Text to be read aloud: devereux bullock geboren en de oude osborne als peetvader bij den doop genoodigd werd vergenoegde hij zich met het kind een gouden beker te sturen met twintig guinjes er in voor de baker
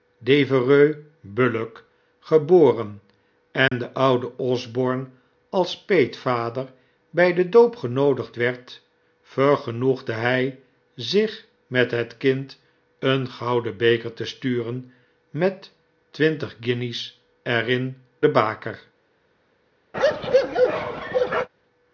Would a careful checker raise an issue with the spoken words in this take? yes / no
yes